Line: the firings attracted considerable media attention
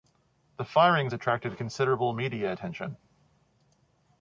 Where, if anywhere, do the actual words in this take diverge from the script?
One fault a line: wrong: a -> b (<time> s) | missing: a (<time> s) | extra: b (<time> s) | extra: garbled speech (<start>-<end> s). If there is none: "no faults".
no faults